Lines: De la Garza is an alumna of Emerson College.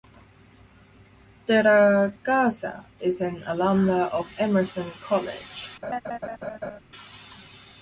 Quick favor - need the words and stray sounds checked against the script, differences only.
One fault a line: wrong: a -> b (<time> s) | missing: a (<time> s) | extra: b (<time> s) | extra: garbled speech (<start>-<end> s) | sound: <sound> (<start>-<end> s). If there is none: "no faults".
sound: laugh (5.8-6.8 s)